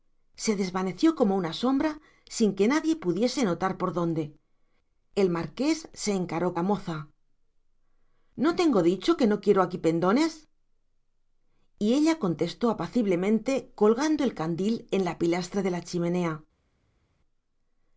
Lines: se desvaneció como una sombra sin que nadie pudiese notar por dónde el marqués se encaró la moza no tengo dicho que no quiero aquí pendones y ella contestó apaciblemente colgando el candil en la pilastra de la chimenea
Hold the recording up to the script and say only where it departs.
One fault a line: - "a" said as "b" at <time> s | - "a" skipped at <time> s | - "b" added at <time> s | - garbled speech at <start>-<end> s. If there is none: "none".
none